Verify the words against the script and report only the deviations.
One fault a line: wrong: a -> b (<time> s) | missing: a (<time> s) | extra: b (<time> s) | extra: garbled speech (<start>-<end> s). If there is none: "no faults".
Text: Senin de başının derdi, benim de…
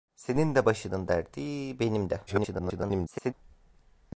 extra: garbled speech (2.3-3.3 s)